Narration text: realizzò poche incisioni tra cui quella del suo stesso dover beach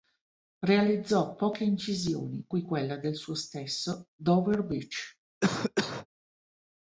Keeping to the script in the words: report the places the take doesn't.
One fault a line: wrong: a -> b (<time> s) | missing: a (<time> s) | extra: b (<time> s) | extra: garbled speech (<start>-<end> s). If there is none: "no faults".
missing: tra (2.5 s)